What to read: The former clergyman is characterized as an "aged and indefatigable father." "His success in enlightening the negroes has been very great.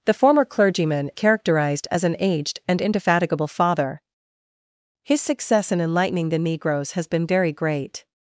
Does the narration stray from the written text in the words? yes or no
yes